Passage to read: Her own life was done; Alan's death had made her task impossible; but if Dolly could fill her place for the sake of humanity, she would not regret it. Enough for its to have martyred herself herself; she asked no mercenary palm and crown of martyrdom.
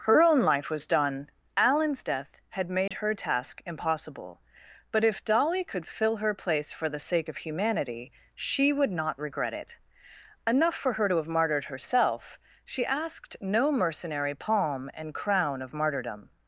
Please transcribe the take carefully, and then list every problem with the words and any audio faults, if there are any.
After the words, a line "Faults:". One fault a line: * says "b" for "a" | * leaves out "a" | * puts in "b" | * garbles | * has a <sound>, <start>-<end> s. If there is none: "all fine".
Her own life was done; Alan's death had made her task impossible; but if Dolly could fill her place for the sake of humanity, she would not regret it. Enough for her to have martyred herself; she asked no mercenary palm and crown of martyrdom.
Faults:
* has a dropout, 2.9-2.9 s
* says "her" for "its"
* leaves out "herself"